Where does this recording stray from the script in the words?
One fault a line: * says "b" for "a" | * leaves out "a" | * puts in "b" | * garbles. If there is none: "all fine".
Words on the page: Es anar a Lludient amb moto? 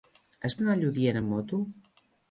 all fine